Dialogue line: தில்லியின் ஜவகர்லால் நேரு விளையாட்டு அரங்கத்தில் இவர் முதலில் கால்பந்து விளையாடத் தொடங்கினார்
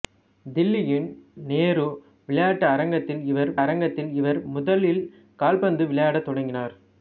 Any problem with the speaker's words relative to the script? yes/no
yes